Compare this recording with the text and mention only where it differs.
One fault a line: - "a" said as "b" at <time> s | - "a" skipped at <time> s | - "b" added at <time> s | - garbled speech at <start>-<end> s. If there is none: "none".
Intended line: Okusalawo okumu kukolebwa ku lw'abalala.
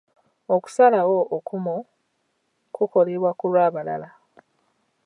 none